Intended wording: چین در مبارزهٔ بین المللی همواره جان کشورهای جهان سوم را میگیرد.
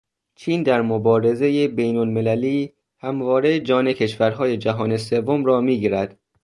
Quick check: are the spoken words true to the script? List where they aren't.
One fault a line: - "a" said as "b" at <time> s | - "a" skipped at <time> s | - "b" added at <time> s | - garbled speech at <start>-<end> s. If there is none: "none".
none